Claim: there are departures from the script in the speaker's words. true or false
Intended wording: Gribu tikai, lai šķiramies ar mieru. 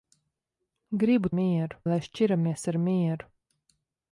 true